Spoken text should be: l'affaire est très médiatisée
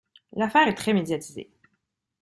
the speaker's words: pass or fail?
pass